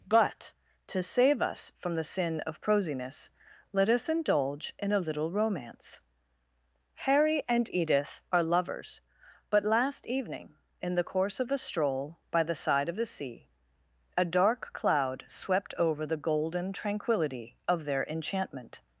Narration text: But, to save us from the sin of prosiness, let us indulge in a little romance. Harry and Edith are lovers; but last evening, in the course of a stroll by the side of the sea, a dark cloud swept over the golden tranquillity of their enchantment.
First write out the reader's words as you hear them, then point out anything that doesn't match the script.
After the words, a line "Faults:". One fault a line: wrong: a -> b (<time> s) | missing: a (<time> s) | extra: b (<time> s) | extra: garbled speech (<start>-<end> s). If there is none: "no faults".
But, to save us from the sin of prosiness, let us indulge in a little romance. Harry and Edith are lovers; but last evening, in the course of a stroll by the side of the sea, a dark cloud swept over the golden tranquillity of their enchantment.
Faults:
no faults